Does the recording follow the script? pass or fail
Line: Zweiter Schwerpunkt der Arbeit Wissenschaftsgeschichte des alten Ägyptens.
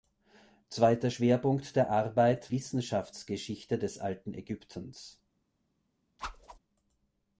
pass